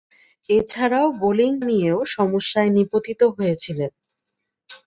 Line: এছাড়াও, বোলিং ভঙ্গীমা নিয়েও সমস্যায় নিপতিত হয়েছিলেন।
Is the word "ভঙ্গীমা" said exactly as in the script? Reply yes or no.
no